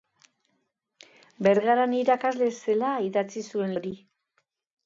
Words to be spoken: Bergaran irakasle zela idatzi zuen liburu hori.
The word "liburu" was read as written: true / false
false